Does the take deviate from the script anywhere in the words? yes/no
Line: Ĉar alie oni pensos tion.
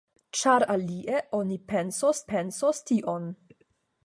yes